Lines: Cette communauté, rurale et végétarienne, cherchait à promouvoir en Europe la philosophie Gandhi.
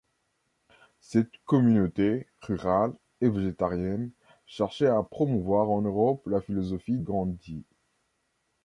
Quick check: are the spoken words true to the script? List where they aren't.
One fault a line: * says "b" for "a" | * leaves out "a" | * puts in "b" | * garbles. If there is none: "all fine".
all fine